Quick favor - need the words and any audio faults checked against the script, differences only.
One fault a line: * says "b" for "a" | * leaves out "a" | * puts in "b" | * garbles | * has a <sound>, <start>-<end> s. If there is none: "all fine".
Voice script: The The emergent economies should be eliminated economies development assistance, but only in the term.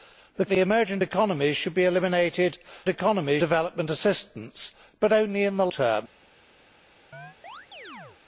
* has a chirp, 7.1-8.2 s